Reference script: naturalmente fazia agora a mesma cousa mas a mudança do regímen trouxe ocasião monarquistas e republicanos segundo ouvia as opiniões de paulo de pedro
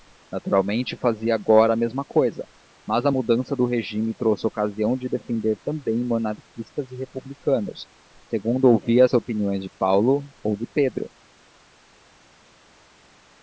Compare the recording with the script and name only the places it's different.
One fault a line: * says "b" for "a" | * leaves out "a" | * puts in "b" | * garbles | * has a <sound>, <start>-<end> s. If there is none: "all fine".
* puts in "de defender também"
* puts in "ou"